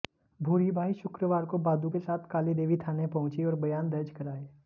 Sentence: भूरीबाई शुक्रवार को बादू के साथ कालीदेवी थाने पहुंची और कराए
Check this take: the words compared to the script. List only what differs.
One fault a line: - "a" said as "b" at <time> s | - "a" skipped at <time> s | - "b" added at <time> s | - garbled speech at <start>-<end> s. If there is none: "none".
- "बयान दर्ज" added at 3.6 s